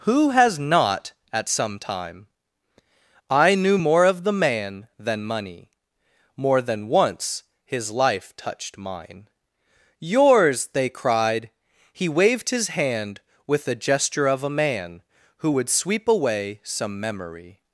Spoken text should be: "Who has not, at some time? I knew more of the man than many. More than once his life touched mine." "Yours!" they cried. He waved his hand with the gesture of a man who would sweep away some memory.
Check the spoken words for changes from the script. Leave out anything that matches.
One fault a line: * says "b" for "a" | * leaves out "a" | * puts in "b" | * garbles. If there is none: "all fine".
* says "money" for "many"